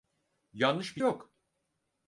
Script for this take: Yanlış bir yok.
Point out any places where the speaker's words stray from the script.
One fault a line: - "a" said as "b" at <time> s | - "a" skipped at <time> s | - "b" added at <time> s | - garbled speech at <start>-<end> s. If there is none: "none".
none